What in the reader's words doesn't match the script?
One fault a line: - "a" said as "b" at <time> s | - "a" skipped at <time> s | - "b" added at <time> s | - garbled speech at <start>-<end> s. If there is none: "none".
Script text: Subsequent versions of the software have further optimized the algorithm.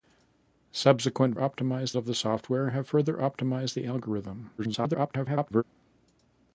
- "versions" said as "optimized" at 1.3 s
- garbled speech at 4.6-5.6 s